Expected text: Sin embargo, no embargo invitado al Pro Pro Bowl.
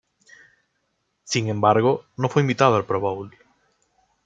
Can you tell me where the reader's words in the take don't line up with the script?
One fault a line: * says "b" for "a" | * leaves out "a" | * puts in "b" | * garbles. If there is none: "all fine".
* says "fue" for "embargo"
* leaves out "Pro"